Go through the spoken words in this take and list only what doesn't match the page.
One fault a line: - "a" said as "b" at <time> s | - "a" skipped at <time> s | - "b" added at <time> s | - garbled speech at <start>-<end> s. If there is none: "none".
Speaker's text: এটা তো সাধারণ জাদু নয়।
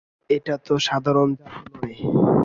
none